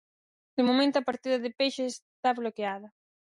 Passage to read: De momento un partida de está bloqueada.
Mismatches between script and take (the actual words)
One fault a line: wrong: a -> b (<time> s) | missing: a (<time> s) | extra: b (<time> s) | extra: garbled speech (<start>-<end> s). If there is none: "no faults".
wrong: un -> a (1.0 s)
extra: peixe (1.6 s)